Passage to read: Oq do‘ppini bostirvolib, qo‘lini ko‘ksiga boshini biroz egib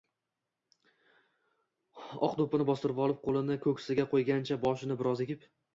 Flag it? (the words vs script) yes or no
yes